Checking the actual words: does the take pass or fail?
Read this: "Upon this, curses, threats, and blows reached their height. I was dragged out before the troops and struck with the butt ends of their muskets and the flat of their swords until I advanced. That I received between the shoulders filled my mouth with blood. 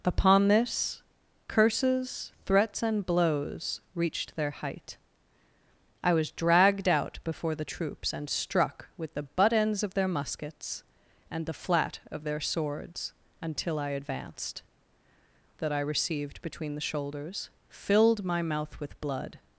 pass